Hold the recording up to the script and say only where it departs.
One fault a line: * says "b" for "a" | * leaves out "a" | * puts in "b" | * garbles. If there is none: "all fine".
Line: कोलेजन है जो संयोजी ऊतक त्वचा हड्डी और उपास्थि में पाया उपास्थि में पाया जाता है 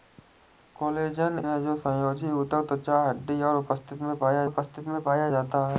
all fine